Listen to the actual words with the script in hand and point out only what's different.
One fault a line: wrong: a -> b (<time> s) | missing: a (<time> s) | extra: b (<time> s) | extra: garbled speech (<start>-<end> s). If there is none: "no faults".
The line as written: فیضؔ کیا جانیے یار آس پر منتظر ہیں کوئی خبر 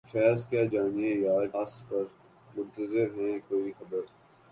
no faults